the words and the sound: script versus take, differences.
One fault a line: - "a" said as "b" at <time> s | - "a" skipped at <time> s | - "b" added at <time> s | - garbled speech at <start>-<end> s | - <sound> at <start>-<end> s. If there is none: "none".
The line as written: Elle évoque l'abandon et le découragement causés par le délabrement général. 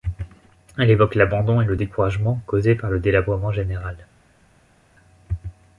none